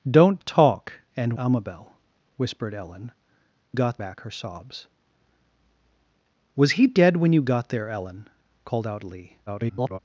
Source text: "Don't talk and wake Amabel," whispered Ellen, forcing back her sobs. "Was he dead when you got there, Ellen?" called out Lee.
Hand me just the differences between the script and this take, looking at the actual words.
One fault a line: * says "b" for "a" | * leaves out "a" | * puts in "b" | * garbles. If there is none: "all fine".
* leaves out "wake"
* says "got" for "forcing"
* garbles